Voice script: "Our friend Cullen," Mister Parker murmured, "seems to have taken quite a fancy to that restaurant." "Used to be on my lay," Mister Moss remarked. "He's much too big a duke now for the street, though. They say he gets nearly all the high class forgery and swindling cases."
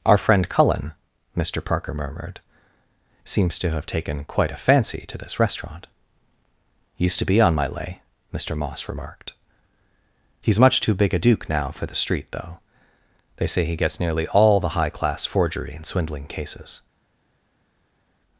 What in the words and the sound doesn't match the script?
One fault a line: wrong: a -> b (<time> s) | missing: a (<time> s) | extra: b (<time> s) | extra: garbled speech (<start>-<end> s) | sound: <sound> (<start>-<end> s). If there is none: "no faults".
wrong: that -> this (5.2 s)